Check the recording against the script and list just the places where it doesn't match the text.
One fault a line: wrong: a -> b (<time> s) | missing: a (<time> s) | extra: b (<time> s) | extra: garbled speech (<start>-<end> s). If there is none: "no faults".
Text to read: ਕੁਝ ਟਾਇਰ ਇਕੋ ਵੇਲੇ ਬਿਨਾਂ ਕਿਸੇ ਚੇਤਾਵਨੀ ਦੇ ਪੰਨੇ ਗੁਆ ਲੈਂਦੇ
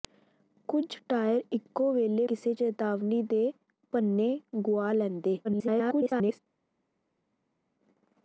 missing: ਬਿਨਾਂ (2.2 s)
extra: garbled speech (5.4-6.4 s)